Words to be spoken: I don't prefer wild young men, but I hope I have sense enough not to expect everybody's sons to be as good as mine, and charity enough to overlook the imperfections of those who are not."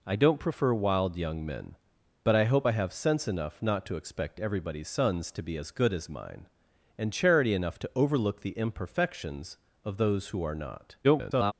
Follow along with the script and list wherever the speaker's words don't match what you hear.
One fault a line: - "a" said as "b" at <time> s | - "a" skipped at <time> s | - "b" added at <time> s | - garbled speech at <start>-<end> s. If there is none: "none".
- garbled speech at 11.0-11.5 s